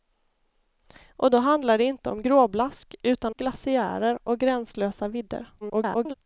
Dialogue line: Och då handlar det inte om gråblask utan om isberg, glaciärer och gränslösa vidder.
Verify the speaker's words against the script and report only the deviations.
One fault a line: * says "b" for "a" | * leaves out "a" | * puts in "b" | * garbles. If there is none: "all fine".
* leaves out "om isberg"
* garbles